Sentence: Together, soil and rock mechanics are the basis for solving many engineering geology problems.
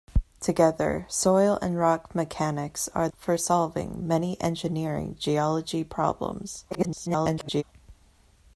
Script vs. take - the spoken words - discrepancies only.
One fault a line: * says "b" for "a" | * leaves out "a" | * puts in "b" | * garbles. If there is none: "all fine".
* leaves out "the basis"
* garbles